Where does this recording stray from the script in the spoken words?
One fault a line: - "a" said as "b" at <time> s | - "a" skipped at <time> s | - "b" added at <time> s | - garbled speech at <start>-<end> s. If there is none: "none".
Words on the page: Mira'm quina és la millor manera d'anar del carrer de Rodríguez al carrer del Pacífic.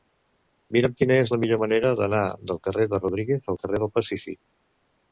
none